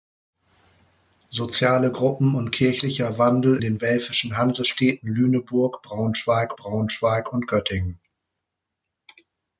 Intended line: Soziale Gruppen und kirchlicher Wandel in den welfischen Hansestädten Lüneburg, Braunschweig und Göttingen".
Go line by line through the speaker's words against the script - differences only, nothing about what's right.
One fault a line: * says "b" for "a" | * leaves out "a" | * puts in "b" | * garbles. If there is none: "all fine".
* leaves out "in"
* puts in "Braunschweig"